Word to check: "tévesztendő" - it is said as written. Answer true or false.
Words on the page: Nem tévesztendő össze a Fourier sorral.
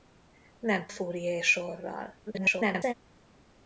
false